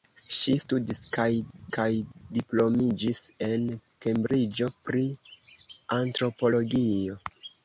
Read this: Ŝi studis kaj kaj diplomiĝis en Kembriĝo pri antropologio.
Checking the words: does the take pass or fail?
pass